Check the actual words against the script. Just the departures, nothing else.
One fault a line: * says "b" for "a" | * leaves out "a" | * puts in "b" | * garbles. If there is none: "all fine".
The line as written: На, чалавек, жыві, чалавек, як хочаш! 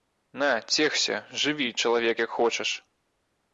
* says "цешся" for "чалавек"